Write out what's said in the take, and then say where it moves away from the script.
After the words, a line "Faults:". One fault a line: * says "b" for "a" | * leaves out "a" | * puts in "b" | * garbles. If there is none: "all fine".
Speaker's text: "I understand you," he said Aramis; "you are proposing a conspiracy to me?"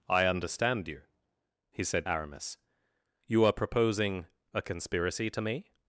"I understand you," he said Aramis; "you are proposing a conspiracy to me?"
Faults:
all fine